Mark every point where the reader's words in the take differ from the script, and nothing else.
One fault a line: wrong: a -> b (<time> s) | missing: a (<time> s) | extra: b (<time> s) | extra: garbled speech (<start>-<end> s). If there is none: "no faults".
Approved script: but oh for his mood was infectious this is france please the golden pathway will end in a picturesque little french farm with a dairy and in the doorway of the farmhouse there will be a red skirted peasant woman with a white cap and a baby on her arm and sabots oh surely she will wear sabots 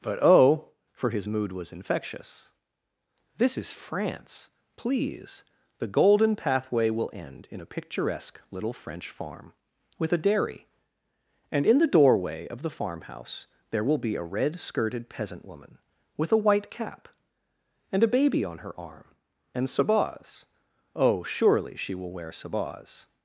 no faults